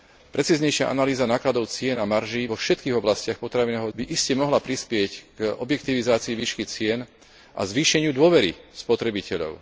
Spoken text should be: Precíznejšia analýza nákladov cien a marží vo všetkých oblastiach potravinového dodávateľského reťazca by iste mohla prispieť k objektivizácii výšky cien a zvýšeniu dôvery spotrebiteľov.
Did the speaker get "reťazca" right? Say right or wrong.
wrong